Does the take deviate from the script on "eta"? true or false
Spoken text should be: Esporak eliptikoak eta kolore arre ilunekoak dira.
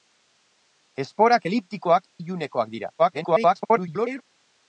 true